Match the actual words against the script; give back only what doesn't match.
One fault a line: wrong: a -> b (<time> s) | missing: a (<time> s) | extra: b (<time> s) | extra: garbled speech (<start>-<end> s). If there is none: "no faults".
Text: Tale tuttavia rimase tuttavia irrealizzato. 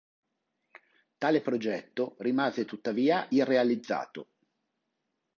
wrong: tuttavia -> progetto (1.4 s)